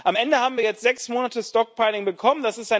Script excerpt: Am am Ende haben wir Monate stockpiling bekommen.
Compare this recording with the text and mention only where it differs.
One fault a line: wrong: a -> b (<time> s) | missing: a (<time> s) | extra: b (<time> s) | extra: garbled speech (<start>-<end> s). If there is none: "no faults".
missing: am (0.2 s)
extra: jetzt sechs (0.6 s)